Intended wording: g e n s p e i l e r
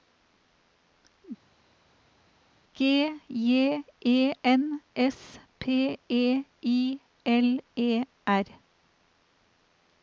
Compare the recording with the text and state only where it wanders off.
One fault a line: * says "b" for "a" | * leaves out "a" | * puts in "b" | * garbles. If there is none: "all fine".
* puts in "j"